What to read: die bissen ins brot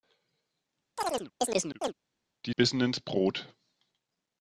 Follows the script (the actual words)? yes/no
yes